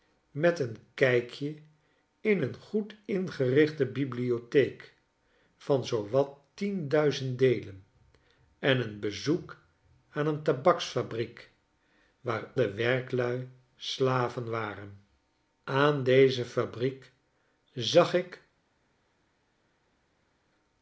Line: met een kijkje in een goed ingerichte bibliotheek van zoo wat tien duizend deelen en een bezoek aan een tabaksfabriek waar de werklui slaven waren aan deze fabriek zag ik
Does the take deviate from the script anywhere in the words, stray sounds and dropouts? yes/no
no